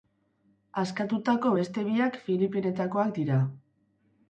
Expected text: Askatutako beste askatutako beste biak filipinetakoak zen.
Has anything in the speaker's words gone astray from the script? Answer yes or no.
yes